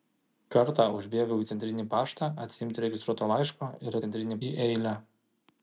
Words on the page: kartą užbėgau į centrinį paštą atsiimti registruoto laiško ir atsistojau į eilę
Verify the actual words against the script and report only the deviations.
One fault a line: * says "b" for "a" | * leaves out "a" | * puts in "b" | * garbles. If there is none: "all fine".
* says "centrinį" for "atsistojau"